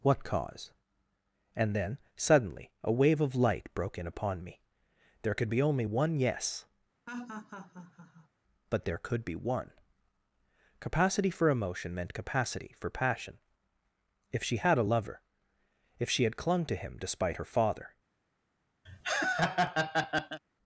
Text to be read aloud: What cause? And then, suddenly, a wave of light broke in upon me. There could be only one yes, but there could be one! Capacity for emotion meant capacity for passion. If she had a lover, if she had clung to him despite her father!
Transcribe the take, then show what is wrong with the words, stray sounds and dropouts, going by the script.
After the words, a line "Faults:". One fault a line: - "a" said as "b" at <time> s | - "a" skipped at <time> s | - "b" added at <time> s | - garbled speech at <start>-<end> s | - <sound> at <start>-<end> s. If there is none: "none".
What cause? And then, suddenly, a wave of light broke in upon me. There could be only one yes, but there could be one! Capacity for emotion meant capacity for passion. If she had a lover, if she had clung to him despite her father!
Faults:
- laugh at 7.1-8.3 s
- laugh at 18.9-20.4 s